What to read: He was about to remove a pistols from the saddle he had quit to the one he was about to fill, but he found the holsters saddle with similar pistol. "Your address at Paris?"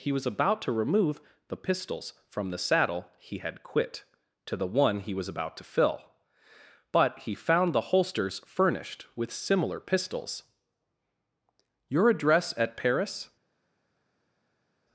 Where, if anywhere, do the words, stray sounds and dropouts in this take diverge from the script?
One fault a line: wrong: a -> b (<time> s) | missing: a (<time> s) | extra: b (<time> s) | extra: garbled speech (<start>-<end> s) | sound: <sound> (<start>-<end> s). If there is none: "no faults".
wrong: a -> the (1.5 s)
wrong: saddle -> furnished (8.4 s)
wrong: pistol -> pistols (9.8 s)